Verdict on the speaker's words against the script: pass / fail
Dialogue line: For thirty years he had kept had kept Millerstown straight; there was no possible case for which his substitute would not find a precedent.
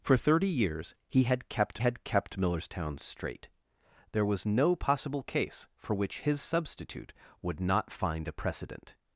pass